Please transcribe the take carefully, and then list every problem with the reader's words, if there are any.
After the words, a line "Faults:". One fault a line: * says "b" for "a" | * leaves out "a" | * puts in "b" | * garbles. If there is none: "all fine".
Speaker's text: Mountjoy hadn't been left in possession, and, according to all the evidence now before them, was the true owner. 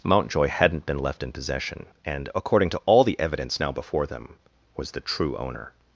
Mountjoy hadn't been left in possession, and, according to all the evidence now before them, was the true owner.
Faults:
all fine